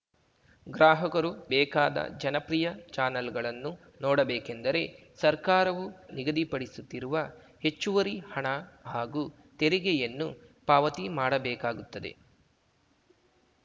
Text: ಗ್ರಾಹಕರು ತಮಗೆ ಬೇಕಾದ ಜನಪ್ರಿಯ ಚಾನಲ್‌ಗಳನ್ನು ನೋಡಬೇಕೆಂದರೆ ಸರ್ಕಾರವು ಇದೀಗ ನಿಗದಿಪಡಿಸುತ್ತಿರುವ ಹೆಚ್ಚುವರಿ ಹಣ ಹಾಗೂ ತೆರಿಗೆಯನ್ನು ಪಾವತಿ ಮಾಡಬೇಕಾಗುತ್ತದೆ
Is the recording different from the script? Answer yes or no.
yes